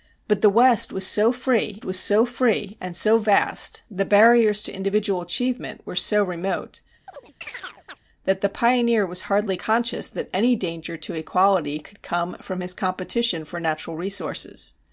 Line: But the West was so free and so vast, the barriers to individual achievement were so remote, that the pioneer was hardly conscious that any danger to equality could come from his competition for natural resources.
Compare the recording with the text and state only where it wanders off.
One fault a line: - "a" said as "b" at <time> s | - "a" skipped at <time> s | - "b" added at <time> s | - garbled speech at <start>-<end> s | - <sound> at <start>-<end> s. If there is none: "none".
- "was so free" added at 1.8 s
- chirp at 7.1-8.0 s